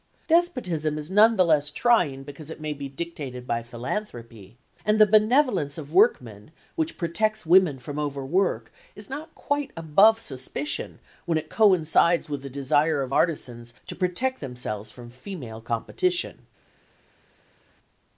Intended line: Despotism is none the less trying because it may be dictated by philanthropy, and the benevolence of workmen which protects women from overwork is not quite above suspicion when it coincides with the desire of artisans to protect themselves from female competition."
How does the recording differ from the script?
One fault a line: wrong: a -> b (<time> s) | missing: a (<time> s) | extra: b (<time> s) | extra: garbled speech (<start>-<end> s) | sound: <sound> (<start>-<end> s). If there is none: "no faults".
no faults